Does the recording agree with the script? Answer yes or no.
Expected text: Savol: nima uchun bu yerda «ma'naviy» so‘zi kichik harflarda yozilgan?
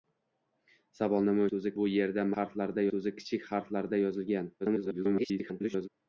no